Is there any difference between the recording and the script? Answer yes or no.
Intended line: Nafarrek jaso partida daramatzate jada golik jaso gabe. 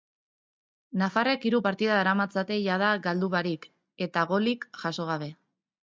yes